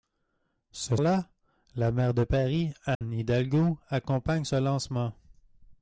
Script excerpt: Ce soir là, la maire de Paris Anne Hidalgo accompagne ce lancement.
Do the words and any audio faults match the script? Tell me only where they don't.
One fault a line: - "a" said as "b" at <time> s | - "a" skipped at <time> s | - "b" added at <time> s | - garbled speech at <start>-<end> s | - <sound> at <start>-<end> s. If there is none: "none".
- "soir" skipped at 1.0 s
- dropout at 2.9-3.0 s